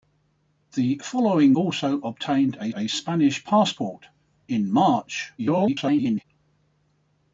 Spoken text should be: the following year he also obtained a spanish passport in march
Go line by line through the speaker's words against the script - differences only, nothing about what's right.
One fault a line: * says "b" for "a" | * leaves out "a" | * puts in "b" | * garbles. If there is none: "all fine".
* leaves out "year he"
* puts in "a"
* garbles